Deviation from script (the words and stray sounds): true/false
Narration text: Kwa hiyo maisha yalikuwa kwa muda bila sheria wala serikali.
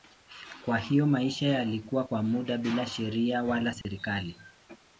true